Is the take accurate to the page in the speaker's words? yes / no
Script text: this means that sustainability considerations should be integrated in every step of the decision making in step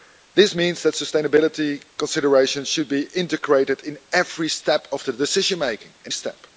yes